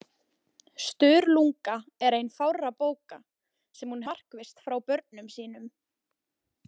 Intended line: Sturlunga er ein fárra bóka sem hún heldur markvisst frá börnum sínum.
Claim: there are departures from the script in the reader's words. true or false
true